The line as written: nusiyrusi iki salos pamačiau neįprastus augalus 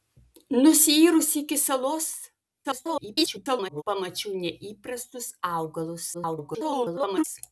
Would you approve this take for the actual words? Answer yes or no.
no